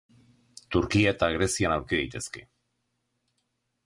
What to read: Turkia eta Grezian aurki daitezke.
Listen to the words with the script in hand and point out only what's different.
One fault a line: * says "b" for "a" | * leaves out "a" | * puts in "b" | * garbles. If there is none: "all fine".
all fine